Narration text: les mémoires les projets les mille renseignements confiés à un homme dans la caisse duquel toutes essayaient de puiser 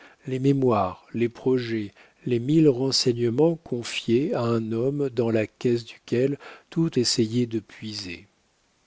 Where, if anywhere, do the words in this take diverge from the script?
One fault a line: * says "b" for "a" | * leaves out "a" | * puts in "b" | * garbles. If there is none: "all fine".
all fine